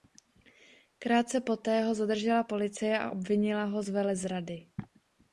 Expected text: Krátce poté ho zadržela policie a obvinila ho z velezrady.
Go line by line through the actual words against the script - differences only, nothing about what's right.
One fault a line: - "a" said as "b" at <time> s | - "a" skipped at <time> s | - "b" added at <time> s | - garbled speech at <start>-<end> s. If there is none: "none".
none